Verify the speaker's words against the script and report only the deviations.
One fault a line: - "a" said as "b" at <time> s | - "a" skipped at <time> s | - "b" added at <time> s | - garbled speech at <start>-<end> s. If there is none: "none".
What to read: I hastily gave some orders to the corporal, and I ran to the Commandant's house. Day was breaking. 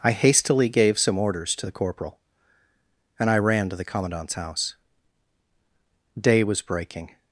none